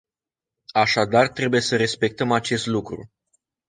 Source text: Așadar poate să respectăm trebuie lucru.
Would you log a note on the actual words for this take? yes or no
yes